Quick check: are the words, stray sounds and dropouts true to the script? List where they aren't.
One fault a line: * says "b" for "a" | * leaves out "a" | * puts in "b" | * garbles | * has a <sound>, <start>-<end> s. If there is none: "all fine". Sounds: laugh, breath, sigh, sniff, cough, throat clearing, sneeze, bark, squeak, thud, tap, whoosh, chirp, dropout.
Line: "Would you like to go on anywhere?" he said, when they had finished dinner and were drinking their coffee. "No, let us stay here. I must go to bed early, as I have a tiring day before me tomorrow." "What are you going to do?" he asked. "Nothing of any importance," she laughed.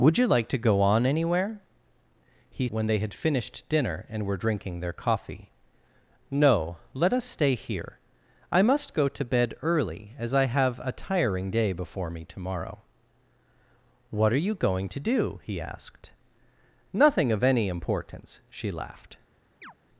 * leaves out "said"
* has a chirp, 19.6-19.7 s